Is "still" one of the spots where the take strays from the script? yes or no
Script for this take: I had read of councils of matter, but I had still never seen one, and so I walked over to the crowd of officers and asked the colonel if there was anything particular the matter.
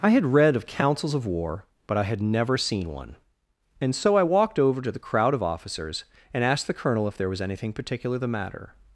yes